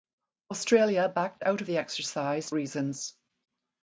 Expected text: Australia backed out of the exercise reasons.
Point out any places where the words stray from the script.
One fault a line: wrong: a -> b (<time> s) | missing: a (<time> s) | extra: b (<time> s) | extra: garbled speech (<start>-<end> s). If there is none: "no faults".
no faults